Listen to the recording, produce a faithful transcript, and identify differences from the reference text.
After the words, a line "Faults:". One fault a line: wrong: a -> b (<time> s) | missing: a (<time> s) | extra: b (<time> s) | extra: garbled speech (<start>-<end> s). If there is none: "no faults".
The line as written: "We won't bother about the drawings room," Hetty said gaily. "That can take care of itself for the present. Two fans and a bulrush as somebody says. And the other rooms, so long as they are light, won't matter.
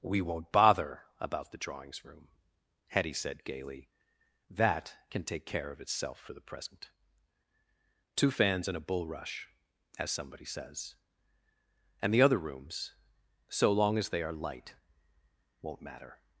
"We won't bother about the drawings room," Hetty said gaily. "That can take care of itself for the present. Two fans and a bulrush as somebody says. And the other rooms, so long as they are light, won't matter.
Faults:
no faults